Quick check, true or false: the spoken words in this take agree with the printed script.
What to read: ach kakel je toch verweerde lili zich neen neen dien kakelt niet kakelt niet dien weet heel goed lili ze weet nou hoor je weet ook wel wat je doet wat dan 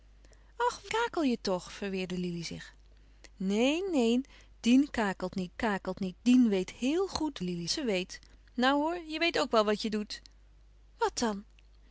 true